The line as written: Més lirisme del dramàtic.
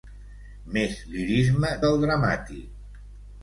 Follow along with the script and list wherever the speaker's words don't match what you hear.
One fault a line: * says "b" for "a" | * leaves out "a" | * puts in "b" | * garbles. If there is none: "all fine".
all fine